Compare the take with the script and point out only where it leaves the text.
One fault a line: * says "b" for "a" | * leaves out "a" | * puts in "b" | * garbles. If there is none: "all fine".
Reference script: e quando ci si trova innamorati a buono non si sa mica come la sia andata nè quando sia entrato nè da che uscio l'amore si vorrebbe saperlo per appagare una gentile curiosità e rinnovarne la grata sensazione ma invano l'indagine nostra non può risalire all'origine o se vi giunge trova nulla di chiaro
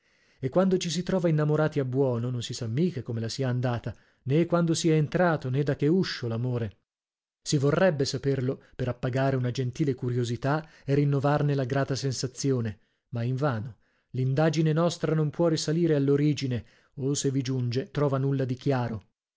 all fine